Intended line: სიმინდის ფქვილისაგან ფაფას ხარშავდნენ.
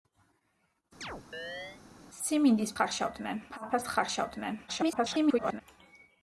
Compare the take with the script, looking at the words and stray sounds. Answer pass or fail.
fail